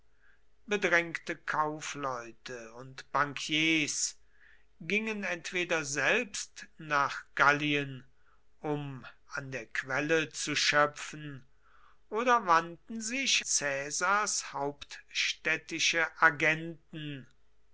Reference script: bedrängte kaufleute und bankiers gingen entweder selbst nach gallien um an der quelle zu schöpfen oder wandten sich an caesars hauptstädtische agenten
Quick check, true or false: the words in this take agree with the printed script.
false